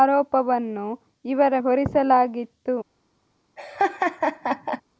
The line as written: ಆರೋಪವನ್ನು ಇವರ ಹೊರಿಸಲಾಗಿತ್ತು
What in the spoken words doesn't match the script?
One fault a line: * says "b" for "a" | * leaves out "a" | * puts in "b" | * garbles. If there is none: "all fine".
all fine